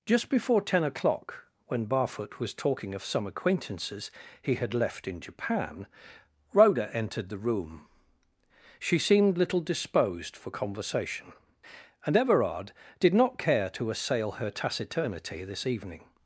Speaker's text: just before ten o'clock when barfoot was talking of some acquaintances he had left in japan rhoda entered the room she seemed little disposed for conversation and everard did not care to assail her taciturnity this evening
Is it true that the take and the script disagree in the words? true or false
false